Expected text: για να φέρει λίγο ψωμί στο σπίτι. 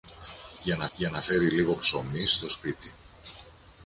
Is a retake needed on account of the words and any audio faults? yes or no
yes